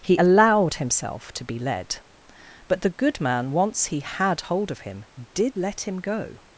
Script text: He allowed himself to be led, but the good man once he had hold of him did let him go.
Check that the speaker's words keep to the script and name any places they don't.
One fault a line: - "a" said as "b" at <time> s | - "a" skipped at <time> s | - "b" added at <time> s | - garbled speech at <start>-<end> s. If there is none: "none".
none